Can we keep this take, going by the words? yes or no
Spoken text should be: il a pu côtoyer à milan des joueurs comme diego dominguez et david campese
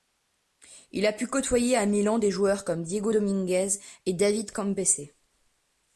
yes